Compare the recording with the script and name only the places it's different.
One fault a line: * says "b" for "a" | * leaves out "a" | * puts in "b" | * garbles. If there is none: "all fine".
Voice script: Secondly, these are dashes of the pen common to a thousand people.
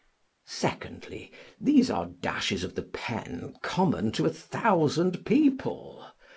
all fine